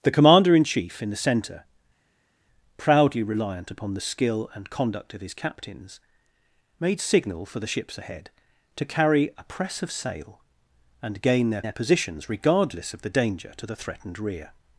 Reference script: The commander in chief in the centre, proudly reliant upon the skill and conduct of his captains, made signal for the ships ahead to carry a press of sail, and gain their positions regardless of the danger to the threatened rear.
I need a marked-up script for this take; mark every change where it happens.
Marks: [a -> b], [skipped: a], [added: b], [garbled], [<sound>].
The commander in chief in the centre, proudly reliant upon the skill and conduct of his captains, made signal for the ships ahead to carry a press of sail, and gain their [added: their] positions regardless of the danger to the threatened rear.